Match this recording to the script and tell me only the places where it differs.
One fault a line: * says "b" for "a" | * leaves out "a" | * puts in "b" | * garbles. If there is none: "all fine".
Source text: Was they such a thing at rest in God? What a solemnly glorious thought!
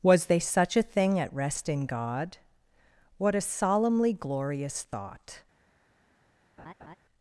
all fine